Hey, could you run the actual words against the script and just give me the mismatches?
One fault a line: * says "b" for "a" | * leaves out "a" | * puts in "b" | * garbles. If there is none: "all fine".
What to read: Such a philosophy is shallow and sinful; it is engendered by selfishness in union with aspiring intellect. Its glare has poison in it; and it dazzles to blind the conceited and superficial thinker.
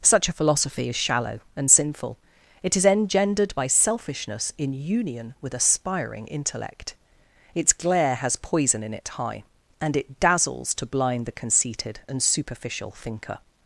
* puts in "high"